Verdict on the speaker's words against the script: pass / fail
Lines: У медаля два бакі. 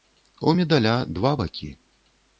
pass